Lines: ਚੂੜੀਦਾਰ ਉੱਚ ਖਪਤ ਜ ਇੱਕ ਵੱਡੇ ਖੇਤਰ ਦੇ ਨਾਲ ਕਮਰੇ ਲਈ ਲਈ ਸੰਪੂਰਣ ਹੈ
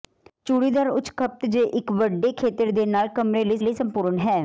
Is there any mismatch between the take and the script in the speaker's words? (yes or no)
no